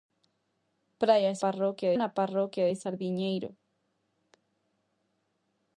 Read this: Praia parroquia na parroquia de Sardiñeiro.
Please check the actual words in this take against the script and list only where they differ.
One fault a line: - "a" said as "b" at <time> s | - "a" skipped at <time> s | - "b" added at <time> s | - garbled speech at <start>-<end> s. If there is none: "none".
none